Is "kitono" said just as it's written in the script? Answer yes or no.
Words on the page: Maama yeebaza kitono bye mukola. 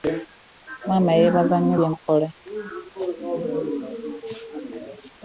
no